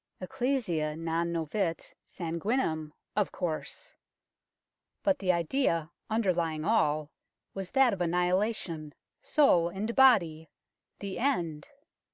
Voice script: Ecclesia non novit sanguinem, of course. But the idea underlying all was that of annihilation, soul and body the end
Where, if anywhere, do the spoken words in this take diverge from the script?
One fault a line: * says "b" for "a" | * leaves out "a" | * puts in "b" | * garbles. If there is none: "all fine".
all fine